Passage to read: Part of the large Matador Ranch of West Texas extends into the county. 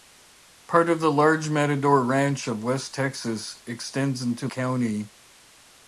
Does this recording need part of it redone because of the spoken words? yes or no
yes